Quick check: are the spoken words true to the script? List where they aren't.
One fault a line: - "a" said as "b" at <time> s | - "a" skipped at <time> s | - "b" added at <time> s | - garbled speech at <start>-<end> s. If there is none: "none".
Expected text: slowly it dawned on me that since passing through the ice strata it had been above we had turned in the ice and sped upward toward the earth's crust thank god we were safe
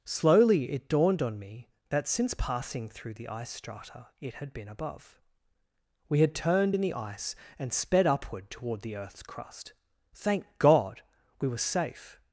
none